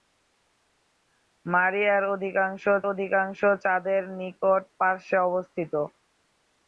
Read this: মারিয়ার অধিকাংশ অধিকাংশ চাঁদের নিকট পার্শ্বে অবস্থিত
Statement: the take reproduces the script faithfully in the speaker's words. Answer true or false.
true